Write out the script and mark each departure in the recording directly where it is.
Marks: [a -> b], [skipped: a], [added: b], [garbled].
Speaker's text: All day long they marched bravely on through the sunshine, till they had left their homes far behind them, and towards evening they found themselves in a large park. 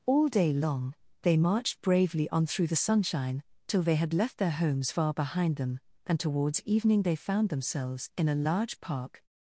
All day long they marched bravely on through the sunshine, till they had left their homes far behind them, and towards evening they found themselves in a large park.